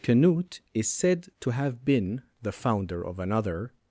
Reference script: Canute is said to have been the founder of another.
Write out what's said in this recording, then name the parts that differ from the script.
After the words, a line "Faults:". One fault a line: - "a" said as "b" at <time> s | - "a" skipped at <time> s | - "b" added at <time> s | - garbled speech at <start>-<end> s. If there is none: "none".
Canute is said to have been the founder of another.
Faults:
none